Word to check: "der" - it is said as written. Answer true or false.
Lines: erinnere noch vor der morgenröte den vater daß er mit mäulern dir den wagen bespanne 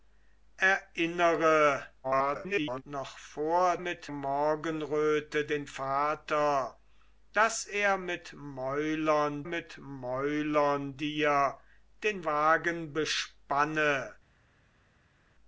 false